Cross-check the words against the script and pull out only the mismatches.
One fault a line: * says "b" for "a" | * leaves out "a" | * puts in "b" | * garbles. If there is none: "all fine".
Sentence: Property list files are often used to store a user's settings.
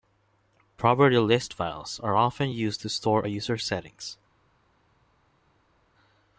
all fine